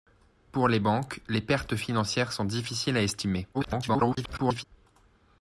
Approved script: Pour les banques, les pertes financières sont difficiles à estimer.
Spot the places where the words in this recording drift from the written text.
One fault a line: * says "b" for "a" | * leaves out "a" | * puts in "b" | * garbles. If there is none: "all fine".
* garbles